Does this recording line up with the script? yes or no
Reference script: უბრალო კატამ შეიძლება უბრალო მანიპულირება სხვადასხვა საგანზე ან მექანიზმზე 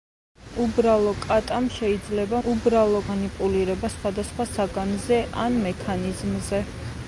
yes